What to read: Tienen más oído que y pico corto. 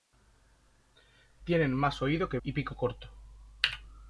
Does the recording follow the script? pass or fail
pass